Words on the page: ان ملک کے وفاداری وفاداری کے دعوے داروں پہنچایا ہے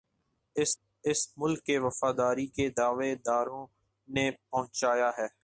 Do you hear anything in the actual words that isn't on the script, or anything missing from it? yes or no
yes